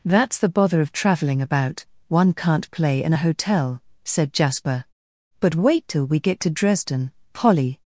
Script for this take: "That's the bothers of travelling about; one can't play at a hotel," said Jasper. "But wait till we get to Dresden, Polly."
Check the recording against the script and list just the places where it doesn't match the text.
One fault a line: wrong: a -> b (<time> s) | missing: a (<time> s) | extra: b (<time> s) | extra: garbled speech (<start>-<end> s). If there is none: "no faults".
wrong: bothers -> bother (0.5 s)
wrong: at -> in (3.0 s)